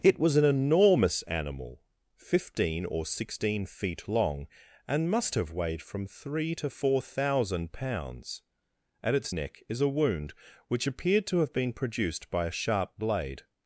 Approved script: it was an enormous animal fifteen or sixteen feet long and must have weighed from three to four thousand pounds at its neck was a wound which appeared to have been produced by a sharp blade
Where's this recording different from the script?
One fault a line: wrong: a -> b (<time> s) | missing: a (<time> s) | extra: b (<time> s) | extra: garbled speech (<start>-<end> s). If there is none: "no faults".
wrong: was -> is (9.7 s)